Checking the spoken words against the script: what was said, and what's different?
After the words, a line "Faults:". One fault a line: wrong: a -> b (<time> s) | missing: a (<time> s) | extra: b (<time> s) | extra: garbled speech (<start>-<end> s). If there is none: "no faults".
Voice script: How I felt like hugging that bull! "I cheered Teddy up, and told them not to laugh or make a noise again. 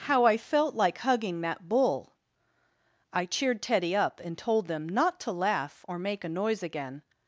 How I felt like hugging that bull! "I cheered Teddy up, and told them not to laugh or make a noise again.
Faults:
no faults